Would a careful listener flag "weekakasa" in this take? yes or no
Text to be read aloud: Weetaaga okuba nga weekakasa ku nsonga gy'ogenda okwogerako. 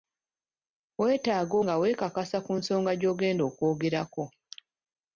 no